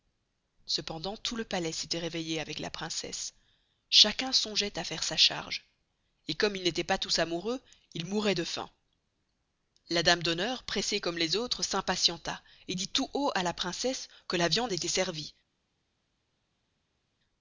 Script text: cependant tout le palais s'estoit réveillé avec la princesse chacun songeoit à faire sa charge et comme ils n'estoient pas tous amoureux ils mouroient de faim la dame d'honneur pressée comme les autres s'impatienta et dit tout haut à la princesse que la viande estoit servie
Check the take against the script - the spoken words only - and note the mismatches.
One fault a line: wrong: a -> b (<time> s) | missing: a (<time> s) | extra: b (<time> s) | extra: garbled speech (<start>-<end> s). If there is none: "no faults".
no faults